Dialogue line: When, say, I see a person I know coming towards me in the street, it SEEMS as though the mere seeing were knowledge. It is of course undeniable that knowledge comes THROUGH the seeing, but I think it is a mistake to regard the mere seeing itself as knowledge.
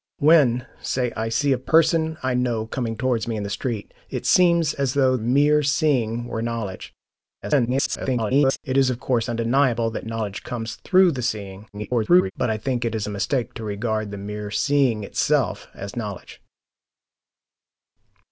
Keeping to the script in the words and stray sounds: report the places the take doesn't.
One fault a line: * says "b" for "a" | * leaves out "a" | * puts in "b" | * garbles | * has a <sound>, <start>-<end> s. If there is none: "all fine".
* leaves out "the"
* garbles
* garbles